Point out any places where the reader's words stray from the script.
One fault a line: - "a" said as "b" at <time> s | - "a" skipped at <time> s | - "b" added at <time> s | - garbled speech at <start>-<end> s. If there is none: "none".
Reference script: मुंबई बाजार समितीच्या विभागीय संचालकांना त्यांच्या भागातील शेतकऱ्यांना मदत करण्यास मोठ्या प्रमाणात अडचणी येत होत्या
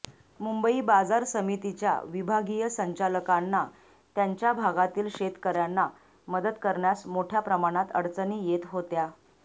none